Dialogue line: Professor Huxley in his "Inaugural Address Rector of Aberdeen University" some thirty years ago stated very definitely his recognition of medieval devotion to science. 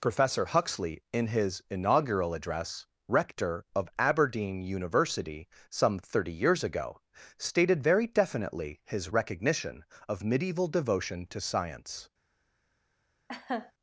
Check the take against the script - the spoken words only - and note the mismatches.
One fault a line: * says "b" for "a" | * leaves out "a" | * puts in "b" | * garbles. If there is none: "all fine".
all fine